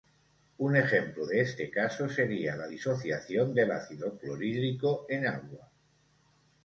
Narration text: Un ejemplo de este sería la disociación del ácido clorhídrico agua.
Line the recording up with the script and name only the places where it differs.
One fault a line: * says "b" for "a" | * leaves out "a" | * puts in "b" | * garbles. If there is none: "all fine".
* puts in "caso"
* puts in "en"